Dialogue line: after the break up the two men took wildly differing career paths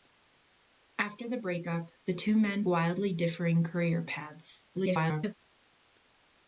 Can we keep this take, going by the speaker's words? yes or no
no